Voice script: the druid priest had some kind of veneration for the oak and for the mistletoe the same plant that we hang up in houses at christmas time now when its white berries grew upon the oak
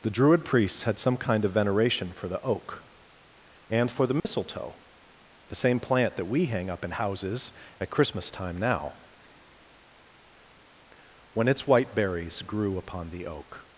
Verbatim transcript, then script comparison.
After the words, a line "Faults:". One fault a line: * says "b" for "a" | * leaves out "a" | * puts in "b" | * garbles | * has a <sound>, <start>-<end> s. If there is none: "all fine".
the druid priests had some kind of veneration for the oak and for the mistletoe the same plant that we hang up in houses at christmas time now when its white berries grew upon the oak
Faults:
* says "priests" for "priest"
* has a dropout, 4.2-4.3 s